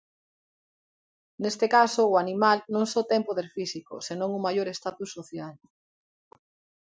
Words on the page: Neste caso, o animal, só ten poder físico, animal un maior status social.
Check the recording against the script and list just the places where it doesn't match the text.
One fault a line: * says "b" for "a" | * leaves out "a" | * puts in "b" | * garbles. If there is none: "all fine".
* puts in "non"
* says "senón" for "animal"